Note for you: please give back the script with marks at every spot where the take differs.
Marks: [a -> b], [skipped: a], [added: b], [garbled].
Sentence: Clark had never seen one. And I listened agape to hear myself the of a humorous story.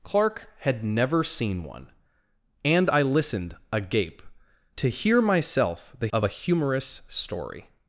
Clark had never seen one. And I listened agape to hear myself the of a humorous story.